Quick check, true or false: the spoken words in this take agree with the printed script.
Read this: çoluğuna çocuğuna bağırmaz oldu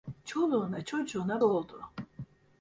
false